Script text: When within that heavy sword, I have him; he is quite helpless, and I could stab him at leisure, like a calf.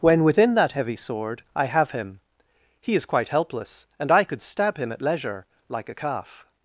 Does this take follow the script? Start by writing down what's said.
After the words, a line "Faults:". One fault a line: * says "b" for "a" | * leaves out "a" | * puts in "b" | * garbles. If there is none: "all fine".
When within that heavy sword, I have him; he is quite helpless, and I could stab him at leisure, like a calf.
Faults:
all fine